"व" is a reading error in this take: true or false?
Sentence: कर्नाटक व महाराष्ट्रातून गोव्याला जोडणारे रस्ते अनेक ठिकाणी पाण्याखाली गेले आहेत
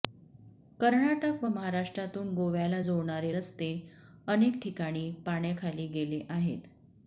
false